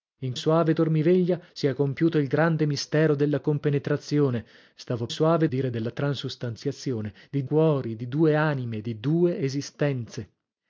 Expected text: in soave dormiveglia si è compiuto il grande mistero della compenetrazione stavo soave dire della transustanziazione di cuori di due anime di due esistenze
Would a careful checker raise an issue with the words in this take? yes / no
no